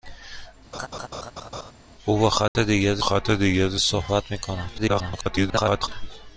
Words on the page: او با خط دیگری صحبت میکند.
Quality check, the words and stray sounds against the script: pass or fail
fail